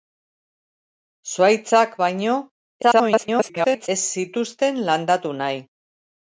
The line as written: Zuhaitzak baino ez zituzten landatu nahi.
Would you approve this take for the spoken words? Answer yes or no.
no